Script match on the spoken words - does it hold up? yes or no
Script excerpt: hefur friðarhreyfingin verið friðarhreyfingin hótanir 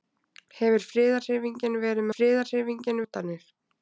yes